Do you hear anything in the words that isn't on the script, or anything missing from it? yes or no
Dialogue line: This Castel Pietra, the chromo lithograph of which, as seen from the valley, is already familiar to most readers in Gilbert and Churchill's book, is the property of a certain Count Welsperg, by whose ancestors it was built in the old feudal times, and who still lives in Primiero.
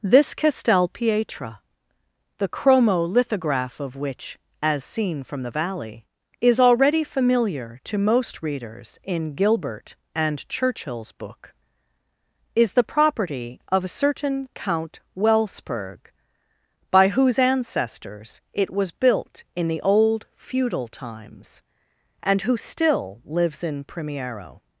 no